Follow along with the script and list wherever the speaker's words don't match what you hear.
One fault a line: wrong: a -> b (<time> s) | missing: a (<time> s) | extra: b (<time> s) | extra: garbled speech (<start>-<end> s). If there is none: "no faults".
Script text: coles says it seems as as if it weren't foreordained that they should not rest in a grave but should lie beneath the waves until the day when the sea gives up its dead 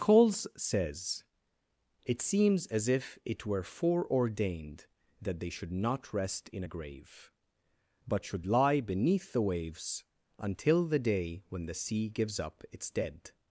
missing: as (2.9 s)
wrong: weren't -> were (3.5 s)